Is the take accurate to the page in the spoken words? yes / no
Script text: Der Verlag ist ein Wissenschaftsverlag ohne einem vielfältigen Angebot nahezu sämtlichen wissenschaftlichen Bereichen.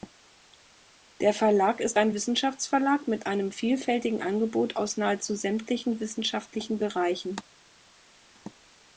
no